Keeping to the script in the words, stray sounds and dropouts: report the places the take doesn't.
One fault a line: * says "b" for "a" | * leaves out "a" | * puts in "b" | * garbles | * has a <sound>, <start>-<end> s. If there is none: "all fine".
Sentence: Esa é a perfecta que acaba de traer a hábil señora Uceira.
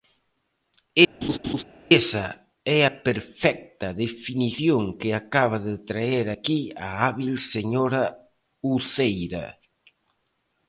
* has a laugh, 1.2-1.6 s
* puts in "definición"
* puts in "aquí"